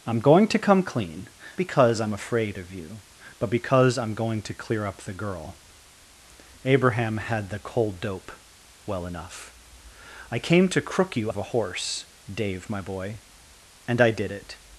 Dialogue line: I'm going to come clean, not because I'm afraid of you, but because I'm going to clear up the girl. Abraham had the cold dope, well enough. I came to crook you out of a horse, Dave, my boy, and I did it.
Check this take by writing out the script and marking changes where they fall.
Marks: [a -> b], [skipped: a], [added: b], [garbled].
I'm going to come clean, [skipped: not] because I'm afraid of you, but because I'm going to clear up the girl. Abraham had the cold dope, well enough. I came to crook you [skipped: out] of a horse, Dave, my boy, and I did it.